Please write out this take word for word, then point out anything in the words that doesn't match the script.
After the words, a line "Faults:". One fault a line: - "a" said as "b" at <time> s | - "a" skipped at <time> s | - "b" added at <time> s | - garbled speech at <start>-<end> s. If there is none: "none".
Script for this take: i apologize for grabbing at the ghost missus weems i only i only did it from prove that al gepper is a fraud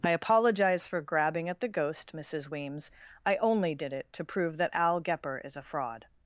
i apologize for grabbing at the ghost missus weems i only did it to prove that al gepper is a fraud
Faults:
- "i only" skipped at 3.8 s
- "from" said as "to" at 4.1 s